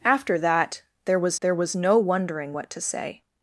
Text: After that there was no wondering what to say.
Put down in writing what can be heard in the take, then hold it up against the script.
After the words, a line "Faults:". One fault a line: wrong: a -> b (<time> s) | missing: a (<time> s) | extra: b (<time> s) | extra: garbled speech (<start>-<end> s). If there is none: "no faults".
After that there was there was no wondering what to say.
Faults:
extra: there was (1.4 s)